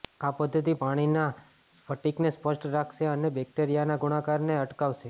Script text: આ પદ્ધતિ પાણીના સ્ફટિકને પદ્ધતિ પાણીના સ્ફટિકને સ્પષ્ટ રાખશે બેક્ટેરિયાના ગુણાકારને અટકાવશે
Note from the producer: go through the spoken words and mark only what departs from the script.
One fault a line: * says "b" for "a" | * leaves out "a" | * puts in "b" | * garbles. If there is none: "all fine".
* leaves out "પદ્ધતિ પાણીના સ્ફટિકને"
* puts in "અને"